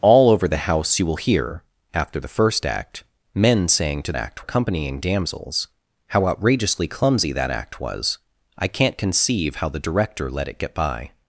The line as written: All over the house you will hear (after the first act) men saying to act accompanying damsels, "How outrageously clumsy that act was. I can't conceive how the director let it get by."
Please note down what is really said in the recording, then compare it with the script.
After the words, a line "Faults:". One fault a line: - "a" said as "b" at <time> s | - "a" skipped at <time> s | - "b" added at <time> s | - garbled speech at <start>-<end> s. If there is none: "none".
All over the house you will hear (after the first act) men saying to act accompanying damsels, "How outrageously clumsy that act was. I can't conceive how the director let it get by."
Faults:
none